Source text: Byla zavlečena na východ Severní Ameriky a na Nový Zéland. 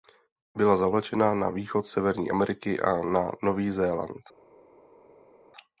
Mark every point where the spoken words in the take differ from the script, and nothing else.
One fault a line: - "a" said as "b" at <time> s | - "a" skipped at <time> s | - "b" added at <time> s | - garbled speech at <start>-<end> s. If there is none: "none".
none